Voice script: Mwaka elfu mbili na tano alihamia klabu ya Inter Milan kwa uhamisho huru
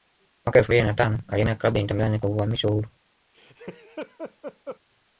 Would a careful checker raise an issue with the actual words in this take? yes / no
no